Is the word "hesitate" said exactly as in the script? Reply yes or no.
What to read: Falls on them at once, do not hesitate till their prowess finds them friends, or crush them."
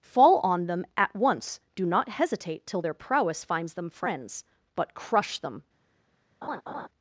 yes